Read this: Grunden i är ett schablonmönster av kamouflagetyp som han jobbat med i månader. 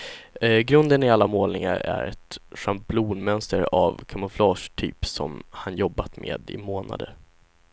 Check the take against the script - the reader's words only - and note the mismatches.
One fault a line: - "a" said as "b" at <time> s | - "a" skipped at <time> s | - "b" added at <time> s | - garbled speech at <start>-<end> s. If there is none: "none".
- "alla målningar" added at 1.1 s